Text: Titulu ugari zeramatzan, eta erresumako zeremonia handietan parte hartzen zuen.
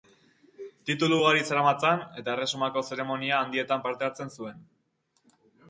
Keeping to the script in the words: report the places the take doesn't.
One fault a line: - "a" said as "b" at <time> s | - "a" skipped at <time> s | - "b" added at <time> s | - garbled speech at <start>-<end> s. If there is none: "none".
none